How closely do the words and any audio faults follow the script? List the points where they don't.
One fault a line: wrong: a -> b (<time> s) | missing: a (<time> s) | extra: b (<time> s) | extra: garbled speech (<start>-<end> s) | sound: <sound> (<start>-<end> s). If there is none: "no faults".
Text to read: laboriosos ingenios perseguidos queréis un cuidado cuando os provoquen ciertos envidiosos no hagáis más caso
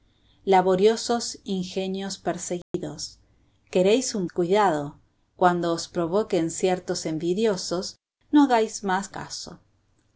sound: dropout (2.6-2.7 s)